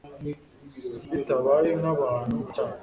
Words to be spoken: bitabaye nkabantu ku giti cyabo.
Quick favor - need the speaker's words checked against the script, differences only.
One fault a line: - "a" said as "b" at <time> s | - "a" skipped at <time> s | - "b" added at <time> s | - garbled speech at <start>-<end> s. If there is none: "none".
- "giti" skipped at 2.5 s